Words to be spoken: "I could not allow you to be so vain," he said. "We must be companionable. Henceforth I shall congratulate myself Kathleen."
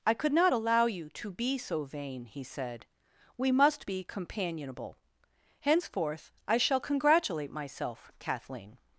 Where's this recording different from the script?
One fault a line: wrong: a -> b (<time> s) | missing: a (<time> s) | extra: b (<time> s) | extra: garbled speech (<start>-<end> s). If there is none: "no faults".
no faults